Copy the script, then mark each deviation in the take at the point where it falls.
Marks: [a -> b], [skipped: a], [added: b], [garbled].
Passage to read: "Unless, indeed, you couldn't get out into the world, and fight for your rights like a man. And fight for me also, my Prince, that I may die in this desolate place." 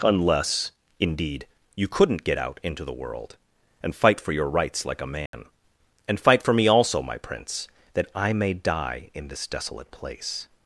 "Unless, indeed, you couldn't get out into the world, and fight for your rights like a man. And fight for me also, my Prince, that I may die in this desolate place."